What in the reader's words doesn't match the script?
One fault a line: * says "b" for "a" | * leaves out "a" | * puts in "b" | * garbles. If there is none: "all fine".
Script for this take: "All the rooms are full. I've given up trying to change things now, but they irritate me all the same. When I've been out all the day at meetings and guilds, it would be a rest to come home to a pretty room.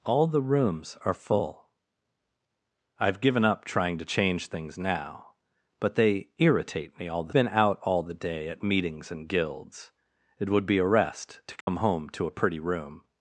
* leaves out "same When I've"